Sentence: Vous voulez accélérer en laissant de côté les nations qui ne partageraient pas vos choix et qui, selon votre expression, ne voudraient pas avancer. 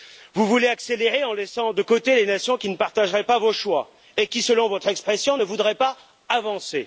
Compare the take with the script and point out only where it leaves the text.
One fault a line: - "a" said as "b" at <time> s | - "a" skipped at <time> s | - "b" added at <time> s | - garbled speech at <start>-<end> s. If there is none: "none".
none